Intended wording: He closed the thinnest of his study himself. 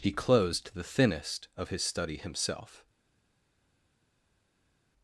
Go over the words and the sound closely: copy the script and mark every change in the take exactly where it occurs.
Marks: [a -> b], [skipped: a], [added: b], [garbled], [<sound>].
He closed the thinnest of his study himself.